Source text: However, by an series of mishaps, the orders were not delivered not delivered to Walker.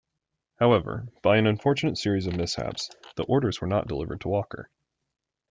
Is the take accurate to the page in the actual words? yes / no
no